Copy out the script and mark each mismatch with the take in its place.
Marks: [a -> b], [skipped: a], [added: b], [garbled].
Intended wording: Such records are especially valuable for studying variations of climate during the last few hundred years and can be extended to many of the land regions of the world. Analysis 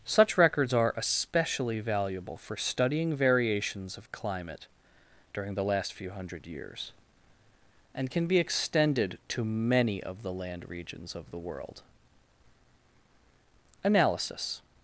Such records are especially valuable for studying variations of climate during the last few hundred years and can be extended to many of the land regions of the world. Analysis